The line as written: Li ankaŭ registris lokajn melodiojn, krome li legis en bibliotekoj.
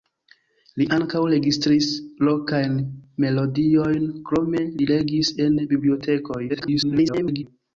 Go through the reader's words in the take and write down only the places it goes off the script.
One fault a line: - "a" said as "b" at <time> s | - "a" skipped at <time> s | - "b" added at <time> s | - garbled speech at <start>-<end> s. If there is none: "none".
- garbled speech at 6.5-7.4 s